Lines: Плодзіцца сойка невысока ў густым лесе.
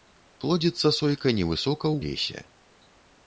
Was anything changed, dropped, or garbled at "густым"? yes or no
yes